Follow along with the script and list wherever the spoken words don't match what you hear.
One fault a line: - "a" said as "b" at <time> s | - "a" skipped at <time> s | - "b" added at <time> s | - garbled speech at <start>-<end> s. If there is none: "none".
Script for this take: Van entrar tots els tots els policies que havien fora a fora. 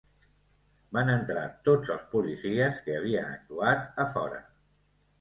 - "tots els" skipped at 2.1 s
- "fora" said as "actuat" at 3.4 s